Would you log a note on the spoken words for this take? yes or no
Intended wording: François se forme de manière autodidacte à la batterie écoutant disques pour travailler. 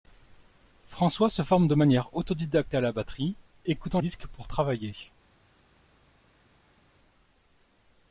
no